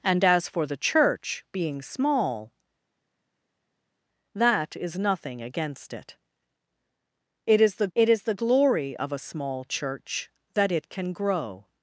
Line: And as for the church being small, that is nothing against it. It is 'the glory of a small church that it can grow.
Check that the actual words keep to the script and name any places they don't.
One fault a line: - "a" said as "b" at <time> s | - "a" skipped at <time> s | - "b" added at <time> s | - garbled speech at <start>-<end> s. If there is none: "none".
- "it is the" added at 8.0 s